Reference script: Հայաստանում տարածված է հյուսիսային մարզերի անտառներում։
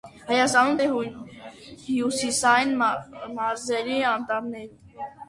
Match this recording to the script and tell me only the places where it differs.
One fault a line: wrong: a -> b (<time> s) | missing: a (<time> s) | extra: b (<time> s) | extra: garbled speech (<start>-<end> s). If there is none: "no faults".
missing: տարածված (0.8 s)